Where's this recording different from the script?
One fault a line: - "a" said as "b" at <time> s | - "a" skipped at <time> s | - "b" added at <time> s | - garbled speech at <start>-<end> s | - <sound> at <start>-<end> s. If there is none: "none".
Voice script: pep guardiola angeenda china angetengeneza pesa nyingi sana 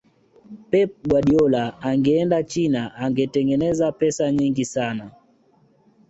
none